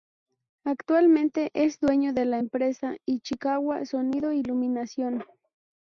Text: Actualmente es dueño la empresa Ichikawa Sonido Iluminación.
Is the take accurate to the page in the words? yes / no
no